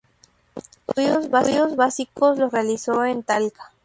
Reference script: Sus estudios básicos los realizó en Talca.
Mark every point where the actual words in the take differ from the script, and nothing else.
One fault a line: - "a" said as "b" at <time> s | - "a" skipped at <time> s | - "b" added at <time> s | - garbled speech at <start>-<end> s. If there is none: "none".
none